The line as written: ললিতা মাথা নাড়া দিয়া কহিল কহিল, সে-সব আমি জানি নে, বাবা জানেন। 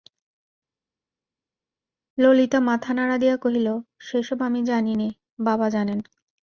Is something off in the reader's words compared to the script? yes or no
yes